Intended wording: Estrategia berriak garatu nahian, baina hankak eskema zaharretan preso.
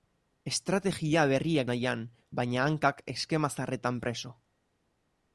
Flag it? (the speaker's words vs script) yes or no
yes